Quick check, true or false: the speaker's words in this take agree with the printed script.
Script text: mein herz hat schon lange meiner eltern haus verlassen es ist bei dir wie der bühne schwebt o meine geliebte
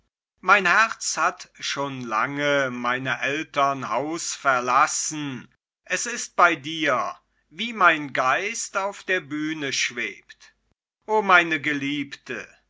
false